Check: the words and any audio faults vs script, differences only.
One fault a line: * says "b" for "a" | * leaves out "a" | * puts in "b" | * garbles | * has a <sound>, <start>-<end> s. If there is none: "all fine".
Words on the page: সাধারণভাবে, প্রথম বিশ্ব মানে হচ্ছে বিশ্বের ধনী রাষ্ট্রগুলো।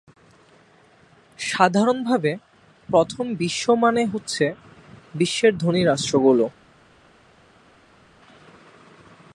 all fine